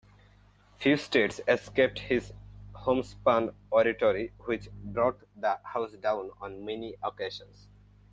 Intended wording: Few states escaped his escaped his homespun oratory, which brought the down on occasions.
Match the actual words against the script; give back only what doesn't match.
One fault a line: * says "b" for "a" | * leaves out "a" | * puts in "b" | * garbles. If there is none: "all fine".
* leaves out "escaped his"
* puts in "house"
* puts in "many"